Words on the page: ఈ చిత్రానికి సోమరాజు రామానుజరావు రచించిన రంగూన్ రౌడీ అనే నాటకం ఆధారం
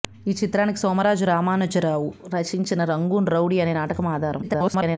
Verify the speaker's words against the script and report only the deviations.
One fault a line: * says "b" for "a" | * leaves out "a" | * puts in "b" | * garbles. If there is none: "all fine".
* garbles